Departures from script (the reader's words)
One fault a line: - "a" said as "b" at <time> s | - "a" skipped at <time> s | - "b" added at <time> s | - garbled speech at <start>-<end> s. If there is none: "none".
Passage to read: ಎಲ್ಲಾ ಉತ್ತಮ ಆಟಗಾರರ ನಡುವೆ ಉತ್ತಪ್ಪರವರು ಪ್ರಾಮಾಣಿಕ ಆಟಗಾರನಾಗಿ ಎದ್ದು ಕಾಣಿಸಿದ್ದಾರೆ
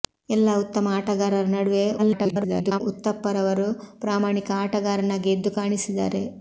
- garbled speech at 2.0-2.8 s